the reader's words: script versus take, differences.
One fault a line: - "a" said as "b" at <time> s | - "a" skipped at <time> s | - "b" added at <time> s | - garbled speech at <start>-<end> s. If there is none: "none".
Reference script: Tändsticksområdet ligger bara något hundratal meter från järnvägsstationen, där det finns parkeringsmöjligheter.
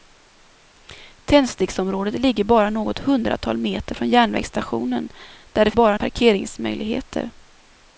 - "finns" said as "bara" at 5.7 s